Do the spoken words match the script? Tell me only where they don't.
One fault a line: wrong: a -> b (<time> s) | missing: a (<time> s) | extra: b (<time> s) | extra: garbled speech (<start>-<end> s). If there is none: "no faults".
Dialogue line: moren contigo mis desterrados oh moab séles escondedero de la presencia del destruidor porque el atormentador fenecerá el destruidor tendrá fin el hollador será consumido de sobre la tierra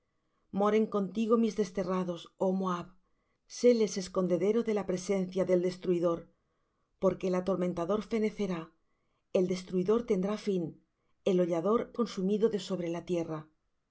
missing: será (11.8 s)